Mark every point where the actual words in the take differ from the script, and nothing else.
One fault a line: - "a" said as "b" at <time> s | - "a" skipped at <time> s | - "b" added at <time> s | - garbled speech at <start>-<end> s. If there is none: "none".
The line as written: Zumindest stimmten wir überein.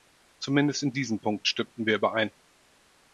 - "in diesem Punkt" added at 0.8 s